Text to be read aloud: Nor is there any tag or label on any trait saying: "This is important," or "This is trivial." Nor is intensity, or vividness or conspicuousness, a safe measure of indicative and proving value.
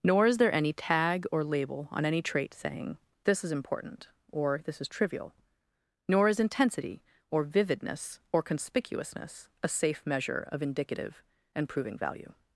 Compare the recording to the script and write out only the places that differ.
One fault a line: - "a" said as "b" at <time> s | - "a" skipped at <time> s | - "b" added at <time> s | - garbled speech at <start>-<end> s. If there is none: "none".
none